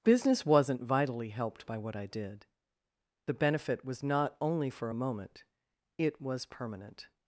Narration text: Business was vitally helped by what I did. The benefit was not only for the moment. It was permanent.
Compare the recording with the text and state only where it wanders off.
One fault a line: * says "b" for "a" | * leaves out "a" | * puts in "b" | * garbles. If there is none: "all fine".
* says "wasn't" for "was"
* says "a" for "the"